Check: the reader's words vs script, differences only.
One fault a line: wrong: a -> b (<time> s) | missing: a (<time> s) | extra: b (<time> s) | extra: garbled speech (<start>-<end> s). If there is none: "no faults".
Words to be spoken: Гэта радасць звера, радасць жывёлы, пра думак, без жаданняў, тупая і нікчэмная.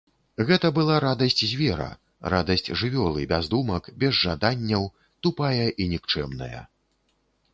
extra: была (0.8 s)
wrong: пра -> без (3.3 s)